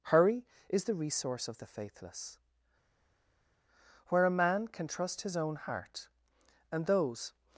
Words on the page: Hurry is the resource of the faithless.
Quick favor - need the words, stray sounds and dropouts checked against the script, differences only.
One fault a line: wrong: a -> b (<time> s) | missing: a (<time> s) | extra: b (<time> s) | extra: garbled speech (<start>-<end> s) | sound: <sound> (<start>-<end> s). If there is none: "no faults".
extra: Where a man can trust his own heart and those (4.1 s)